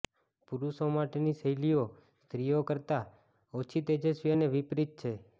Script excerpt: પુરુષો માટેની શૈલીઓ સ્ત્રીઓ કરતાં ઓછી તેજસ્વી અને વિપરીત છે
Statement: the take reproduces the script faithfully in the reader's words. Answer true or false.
true